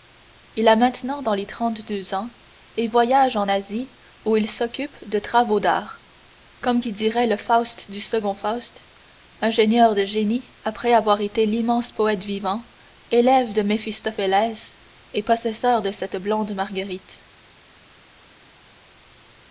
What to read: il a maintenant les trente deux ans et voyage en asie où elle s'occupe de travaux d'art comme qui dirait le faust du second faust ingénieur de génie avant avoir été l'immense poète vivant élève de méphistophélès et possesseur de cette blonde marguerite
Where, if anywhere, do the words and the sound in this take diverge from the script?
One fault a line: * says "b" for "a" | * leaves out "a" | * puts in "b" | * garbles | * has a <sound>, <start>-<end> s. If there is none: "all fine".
* puts in "dans"
* says "il" for "elle"
* says "après" for "avant"